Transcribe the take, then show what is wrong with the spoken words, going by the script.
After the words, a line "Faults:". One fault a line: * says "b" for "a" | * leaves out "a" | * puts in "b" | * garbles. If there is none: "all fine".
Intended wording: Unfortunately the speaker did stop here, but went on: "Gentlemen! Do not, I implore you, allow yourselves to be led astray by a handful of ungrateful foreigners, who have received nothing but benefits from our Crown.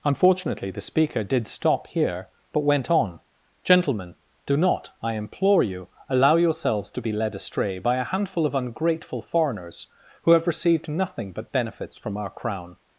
Unfortunately the speaker did stop here, but went on: "Gentlemen! Do not, I implore you, allow yourselves to be led astray by a handful of ungrateful foreigners, who have received nothing but benefits from our Crown.
Faults:
all fine